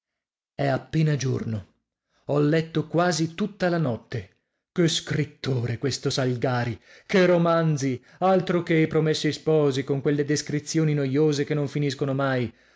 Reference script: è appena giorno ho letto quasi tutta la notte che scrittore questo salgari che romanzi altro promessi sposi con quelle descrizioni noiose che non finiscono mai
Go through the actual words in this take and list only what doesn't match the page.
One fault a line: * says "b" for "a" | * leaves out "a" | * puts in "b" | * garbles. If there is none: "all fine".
* puts in "che i"